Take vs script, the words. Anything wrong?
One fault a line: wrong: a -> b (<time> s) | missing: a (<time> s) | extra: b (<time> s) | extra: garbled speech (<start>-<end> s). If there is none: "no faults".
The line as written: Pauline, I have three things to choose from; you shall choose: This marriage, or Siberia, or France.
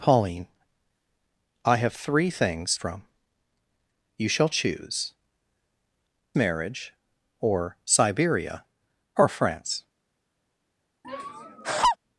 missing: to choose (2.8 s)
missing: This (5.1 s)